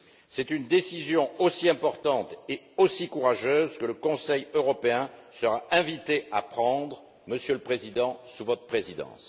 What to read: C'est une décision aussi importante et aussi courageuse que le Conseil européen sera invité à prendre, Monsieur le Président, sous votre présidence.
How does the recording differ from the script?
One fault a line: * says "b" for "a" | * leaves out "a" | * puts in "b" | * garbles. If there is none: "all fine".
all fine